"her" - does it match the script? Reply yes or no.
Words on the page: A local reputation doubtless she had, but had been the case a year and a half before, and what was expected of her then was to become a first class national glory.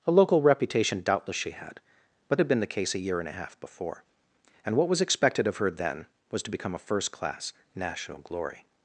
yes